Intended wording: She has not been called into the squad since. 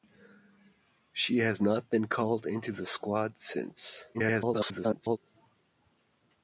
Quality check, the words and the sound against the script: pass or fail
fail